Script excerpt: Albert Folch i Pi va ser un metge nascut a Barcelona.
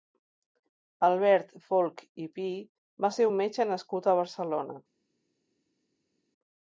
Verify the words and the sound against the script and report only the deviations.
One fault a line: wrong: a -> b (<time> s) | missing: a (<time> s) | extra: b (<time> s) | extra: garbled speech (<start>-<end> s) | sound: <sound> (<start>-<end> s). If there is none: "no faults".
no faults